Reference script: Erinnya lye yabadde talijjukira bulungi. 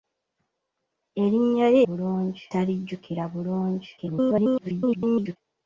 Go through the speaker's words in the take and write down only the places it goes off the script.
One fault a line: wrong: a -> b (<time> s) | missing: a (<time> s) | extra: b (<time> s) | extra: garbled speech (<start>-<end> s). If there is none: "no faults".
wrong: yabadde -> bulungi (1.9 s)
extra: garbled speech (4.0-5.4 s)